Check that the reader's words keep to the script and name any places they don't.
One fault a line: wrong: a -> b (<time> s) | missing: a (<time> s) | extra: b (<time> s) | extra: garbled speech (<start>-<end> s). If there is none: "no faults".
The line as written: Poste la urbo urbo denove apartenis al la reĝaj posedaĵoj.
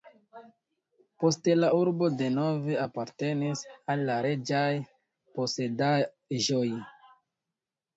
missing: urbo (2.1 s)